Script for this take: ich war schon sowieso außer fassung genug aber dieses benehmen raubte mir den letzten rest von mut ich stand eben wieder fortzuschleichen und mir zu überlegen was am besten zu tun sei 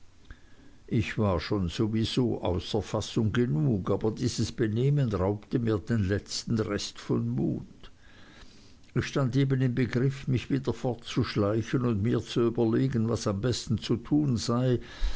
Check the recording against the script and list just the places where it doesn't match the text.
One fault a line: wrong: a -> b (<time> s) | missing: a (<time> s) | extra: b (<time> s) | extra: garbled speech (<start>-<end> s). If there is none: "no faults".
extra: im begriff mich (9.6 s)